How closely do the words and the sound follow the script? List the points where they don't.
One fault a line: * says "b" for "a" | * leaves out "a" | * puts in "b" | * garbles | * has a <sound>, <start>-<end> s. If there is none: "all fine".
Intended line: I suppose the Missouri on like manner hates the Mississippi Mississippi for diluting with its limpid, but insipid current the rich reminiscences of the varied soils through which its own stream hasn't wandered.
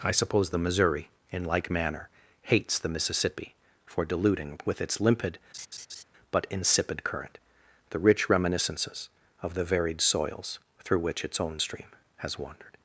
* says "in" for "on"
* leaves out "Mississippi"
* has a laugh, 5.5-6.0 s
* says "has" for "hasn't"